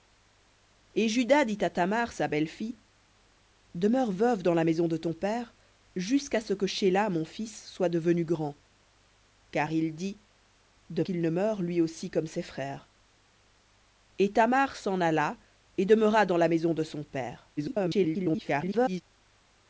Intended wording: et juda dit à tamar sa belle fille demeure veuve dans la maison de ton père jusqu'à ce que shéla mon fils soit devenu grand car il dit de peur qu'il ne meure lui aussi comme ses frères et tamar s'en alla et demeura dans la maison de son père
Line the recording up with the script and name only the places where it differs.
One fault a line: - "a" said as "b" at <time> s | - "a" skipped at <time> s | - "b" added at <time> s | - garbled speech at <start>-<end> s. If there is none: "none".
- "peur" skipped at 11.0 s
- garbled speech at 17.6-19.0 s